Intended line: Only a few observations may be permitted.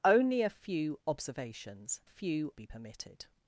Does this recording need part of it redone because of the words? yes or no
yes